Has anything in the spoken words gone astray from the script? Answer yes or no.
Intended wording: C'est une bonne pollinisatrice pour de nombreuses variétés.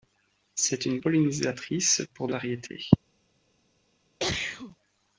yes